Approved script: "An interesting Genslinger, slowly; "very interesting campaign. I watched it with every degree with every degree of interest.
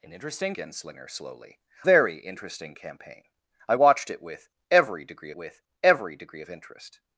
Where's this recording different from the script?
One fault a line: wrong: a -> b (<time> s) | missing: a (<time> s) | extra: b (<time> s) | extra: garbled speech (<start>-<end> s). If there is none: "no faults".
no faults